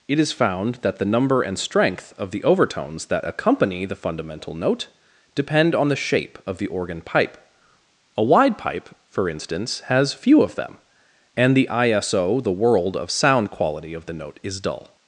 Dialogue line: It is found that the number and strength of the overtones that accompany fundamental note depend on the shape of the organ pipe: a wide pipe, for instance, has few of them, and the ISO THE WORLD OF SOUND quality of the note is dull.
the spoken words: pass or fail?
fail